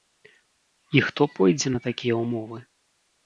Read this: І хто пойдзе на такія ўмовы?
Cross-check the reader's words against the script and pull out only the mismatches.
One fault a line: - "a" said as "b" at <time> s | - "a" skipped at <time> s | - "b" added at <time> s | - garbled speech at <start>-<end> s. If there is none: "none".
none